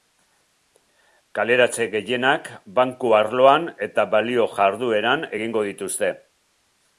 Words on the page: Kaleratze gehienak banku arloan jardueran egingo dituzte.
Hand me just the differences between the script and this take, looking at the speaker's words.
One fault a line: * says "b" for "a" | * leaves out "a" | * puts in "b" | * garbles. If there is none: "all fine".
* puts in "eta balio"